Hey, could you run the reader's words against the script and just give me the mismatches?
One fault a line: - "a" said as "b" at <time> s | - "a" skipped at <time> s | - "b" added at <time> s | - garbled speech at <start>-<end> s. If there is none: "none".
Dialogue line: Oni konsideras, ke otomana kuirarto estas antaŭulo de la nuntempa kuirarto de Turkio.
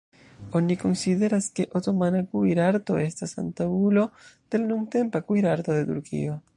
none